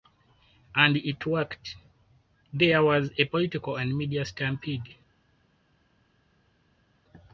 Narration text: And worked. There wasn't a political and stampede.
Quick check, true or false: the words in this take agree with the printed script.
false